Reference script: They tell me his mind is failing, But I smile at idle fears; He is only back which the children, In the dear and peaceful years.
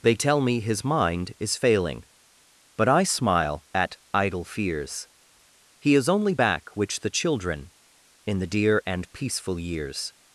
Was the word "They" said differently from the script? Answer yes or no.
no